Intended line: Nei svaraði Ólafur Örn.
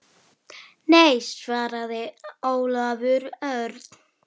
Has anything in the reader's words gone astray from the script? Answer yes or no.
no